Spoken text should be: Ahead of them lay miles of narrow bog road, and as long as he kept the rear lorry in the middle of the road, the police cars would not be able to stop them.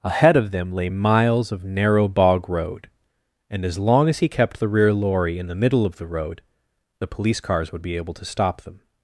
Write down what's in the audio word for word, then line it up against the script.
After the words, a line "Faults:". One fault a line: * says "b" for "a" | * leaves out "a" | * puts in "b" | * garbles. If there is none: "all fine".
Ahead of them lay miles of narrow bog road, and as long as he kept the rear lorry in the middle of the road, the police cars would be able to stop them.
Faults:
* leaves out "not"